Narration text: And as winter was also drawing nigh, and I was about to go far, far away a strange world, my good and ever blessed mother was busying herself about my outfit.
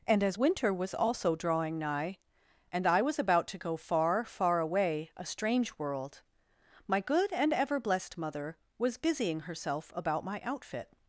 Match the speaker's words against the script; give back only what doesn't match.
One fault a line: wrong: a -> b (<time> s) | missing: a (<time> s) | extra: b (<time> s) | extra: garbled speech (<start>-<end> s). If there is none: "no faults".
no faults